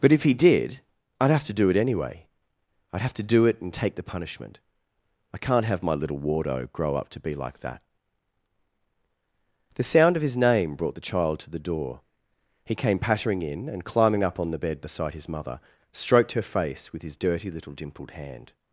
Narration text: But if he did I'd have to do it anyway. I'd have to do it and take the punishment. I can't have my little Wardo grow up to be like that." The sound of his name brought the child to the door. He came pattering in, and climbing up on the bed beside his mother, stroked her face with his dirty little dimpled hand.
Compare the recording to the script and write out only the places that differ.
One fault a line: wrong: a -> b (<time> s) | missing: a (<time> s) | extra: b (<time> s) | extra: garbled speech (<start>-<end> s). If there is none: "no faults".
no faults